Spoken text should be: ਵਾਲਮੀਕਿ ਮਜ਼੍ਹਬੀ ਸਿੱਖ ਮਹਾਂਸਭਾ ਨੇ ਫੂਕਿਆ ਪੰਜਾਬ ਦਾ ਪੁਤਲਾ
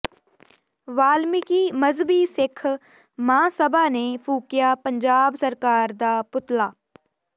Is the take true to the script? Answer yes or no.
no